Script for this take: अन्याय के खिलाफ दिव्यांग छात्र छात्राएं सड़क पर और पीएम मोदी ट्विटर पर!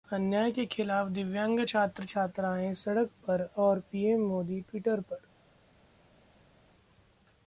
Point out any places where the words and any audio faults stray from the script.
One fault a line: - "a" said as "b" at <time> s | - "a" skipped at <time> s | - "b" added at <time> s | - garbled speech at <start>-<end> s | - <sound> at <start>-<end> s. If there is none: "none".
none